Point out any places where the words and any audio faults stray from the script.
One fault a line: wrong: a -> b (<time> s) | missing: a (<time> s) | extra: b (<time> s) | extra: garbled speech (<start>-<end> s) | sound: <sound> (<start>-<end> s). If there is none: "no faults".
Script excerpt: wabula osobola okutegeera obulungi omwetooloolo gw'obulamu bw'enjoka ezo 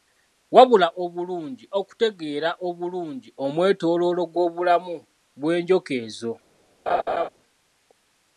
wrong: osobola -> obulungi (1.0 s)
sound: laugh (6.9-7.3 s)